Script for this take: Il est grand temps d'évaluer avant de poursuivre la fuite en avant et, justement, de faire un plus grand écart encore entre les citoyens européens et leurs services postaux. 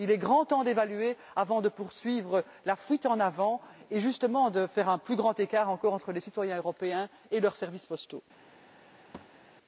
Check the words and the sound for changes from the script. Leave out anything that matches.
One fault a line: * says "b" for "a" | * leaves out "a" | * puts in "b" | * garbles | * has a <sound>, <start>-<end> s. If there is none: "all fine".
* has a thud, 9.1-9.5 s